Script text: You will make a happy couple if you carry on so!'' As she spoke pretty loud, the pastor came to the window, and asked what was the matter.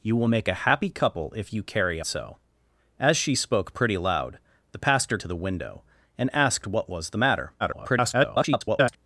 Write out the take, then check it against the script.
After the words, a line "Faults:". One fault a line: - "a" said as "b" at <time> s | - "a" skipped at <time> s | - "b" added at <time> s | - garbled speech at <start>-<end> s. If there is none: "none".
You will make a happy couple if you carry so!'' As she spoke pretty loud, the pastor to the window, and asked what was the matter. [garbled]
Faults:
- "on" skipped at 2.0 s
- "came" skipped at 5.2 s
- garbled speech at 7.6-9.0 s